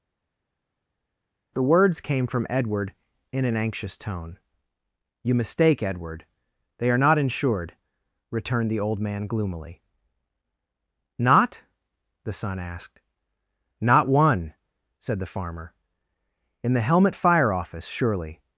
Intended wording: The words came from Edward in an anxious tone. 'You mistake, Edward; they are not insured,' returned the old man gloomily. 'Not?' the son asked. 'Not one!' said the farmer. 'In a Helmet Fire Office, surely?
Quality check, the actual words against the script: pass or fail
fail